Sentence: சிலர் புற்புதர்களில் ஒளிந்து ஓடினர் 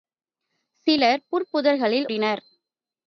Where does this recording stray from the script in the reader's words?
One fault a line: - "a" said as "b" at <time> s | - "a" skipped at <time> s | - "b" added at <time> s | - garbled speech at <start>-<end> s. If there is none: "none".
- "ஒளிந்து" skipped at 2.1 s